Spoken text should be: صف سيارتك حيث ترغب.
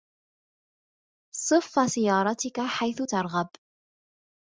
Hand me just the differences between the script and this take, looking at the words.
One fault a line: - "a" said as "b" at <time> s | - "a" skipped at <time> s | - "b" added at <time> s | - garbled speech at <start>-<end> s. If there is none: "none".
none